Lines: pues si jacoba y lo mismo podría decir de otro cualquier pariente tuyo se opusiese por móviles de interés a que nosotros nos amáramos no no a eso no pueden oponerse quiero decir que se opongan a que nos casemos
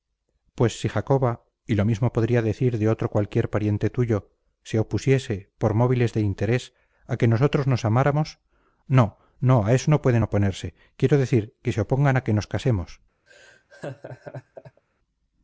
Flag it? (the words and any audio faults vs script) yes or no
yes